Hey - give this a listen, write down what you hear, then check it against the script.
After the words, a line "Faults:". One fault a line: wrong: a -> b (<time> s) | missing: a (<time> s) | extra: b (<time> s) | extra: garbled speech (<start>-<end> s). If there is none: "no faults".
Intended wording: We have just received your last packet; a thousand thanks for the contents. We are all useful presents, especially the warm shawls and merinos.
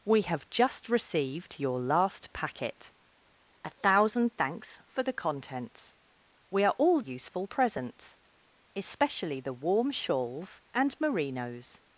We have just received your last packet; a thousand thanks for the contents. We are all useful presents, especially the warm shawls and merinos.
Faults:
no faults